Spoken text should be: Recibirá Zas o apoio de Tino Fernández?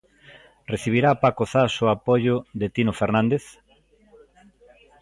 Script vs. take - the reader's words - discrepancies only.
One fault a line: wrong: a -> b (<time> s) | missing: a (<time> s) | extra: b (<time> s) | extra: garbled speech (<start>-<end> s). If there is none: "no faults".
extra: Paco (1.2 s)